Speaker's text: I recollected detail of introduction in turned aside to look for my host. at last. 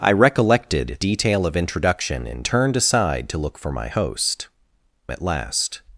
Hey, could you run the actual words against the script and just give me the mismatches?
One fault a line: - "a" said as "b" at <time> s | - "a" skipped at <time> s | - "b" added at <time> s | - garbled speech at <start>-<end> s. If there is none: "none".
none